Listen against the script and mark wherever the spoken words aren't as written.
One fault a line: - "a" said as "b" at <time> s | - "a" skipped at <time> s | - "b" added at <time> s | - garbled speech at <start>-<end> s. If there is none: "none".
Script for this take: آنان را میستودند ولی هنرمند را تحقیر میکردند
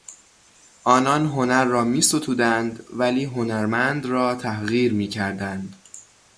- "هنر" added at 1.2 s